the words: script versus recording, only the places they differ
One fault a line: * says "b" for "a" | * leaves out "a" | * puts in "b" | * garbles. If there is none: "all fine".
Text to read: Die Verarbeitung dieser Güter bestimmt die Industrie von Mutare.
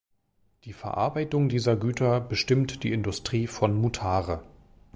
all fine